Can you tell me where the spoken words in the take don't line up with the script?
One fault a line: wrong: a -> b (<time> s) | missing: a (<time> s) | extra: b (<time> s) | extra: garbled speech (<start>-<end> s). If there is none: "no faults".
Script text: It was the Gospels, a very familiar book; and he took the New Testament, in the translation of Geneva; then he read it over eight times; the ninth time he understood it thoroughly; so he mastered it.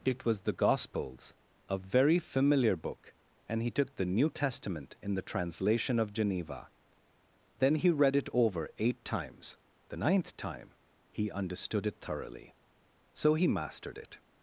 no faults